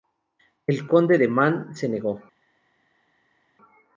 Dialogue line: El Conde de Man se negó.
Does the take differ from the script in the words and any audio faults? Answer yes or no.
no